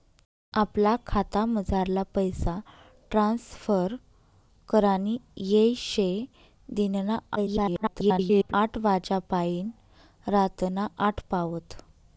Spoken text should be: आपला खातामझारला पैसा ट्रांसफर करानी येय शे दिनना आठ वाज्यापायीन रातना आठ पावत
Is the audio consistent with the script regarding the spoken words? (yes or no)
no